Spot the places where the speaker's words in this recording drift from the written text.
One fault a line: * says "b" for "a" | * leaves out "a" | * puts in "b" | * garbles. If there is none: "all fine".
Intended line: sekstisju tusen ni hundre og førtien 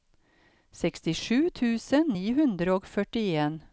all fine